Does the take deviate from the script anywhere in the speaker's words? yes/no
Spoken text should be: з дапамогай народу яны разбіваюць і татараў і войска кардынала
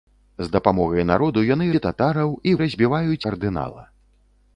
yes